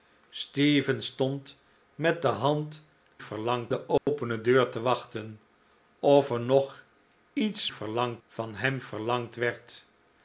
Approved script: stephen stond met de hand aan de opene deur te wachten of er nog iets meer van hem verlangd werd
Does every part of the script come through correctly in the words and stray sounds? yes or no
no